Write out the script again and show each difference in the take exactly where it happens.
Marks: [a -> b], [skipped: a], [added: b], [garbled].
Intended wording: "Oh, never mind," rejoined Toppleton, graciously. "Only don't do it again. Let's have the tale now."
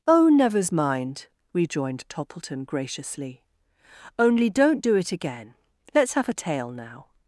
"Oh, [never -> nevers] mind," rejoined Toppleton, graciously. "Only don't do it again. Let's have [the -> a] tale now."